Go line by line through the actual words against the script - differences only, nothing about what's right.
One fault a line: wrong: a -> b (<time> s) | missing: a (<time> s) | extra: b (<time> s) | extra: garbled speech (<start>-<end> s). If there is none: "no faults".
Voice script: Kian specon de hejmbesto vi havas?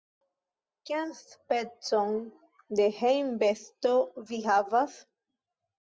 no faults